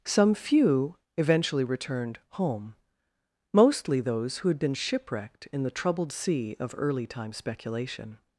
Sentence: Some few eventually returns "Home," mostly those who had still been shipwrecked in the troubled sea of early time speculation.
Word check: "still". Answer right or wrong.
wrong